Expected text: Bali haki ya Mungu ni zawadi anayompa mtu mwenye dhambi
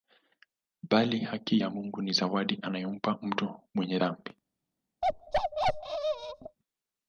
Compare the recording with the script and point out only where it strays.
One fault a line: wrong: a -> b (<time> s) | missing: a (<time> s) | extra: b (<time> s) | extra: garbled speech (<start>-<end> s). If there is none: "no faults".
no faults